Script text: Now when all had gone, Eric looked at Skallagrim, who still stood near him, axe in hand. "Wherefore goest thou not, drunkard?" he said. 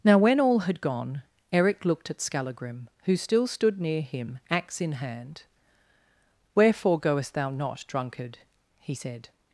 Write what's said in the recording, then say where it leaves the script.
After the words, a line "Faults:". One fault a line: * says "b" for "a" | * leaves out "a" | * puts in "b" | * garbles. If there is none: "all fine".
Now when all had gone, Eric looked at Skallagrim, who still stood near him, axe in hand. "Wherefore goest thou not, drunkard?" he said.
Faults:
all fine